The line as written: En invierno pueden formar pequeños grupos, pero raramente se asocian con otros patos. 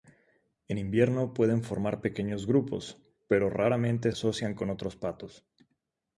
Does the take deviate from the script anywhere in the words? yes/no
yes